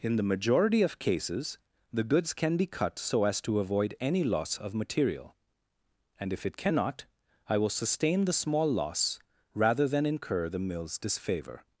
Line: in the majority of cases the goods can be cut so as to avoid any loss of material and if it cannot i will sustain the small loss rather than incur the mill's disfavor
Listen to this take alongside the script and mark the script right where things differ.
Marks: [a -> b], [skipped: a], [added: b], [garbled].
in the majority of cases the goods can be cut so as to avoid any loss of material and if it cannot i will sustain the small loss rather than incur the mill's disfavor